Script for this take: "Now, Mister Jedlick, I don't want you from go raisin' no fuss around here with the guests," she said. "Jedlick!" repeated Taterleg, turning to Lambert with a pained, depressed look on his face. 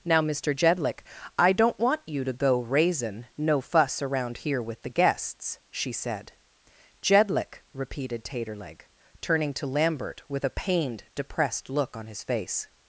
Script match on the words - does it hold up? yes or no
no